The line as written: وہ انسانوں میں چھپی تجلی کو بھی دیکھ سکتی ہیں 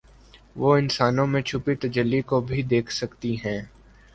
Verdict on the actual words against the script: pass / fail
pass